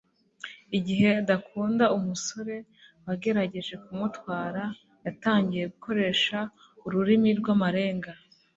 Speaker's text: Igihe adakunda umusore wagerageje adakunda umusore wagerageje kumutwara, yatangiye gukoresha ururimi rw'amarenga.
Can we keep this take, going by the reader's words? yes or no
no